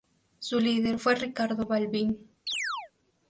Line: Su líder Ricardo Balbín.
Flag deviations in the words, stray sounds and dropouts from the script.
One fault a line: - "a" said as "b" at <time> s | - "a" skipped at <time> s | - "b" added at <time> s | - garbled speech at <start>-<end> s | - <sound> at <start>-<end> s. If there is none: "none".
- "fue" added at 1.0 s
- chirp at 2.5-2.9 s